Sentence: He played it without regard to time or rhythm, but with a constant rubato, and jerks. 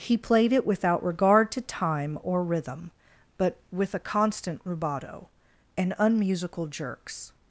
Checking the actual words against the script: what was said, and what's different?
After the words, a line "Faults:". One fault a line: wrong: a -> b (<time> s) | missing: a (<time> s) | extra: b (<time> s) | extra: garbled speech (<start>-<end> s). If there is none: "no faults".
He played it without regard to time or rhythm, but with a constant rubato, and unmusical jerks.
Faults:
extra: unmusical (6.0 s)